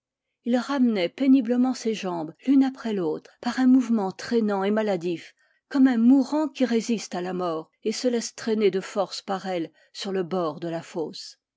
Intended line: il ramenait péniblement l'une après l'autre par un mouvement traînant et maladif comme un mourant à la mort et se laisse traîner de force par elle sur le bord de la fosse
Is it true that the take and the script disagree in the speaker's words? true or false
true